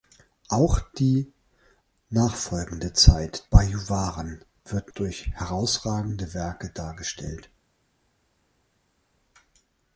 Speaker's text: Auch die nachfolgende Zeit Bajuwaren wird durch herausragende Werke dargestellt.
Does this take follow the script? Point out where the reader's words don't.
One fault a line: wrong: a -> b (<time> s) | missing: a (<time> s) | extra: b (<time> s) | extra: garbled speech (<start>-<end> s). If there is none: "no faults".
no faults